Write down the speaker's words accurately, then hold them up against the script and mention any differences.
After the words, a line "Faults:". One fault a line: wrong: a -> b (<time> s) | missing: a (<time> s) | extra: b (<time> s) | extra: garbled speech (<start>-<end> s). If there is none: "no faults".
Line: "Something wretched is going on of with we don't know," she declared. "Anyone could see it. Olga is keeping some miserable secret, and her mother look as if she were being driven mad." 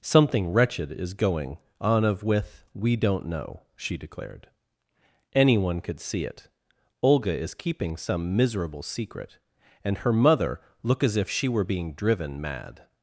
"Something wretched is going on of with we don't know," she declared. "Anyone could see it. Olga is keeping some miserable secret, and her mother look as if she were being driven mad."
Faults:
no faults